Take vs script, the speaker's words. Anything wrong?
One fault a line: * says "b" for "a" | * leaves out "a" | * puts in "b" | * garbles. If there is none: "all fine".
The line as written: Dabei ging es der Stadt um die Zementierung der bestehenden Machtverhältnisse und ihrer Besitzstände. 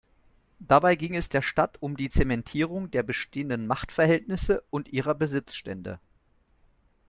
all fine